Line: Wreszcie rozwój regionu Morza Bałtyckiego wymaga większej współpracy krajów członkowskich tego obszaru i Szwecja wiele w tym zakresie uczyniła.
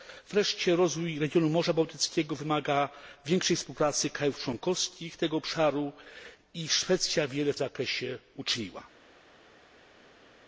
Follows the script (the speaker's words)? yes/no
no